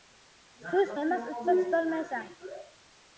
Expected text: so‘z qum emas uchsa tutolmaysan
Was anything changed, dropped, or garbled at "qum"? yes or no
yes